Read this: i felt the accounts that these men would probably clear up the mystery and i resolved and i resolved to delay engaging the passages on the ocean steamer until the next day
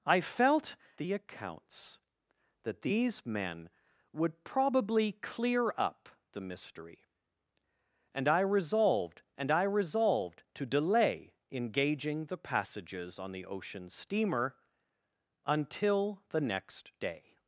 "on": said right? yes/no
yes